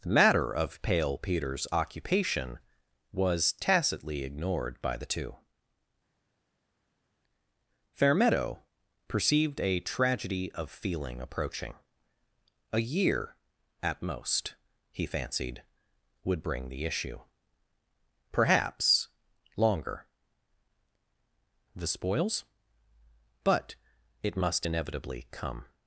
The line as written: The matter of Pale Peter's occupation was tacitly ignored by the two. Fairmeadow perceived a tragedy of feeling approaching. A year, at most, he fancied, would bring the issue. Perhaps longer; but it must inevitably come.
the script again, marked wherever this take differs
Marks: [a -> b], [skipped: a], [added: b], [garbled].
The matter of Pale Peter's occupation was tacitly ignored by the two. Fairmeadow perceived a tragedy of feeling approaching. A year, at most, he fancied, would bring the issue. Perhaps longer; [added: the spoils] but it must inevitably come.